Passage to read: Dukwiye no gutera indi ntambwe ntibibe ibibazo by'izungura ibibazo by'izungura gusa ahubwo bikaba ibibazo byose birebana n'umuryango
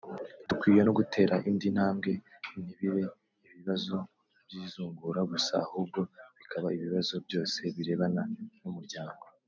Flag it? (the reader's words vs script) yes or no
yes